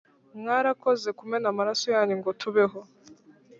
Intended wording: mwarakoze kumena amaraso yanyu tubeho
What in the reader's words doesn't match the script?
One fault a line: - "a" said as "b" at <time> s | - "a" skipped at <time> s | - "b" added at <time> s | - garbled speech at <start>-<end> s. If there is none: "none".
- "ngo" added at 2.2 s